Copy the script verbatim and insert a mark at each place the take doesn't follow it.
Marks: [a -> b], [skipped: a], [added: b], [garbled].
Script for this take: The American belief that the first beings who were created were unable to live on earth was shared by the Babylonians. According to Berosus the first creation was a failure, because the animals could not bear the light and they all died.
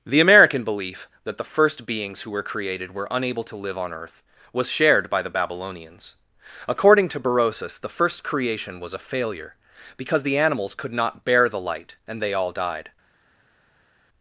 The American belief that the first beings who were created were unable to live on earth was shared by the Babylonians. According to Berosus the first creation was a failure, because the animals could not bear the light and they all died.